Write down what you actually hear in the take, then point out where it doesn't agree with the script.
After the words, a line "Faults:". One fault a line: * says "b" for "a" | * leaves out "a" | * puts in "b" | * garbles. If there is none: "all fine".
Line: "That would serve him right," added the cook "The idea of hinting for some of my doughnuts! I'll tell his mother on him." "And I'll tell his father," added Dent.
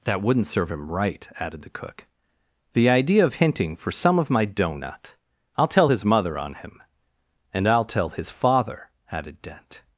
"That wouldn't serve him right," added the cook "The idea of hinting for some of my doughnut! I'll tell his mother on him." "And I'll tell his father," added Dent.
Faults:
* says "wouldn't" for "would"
* says "doughnut" for "doughnuts"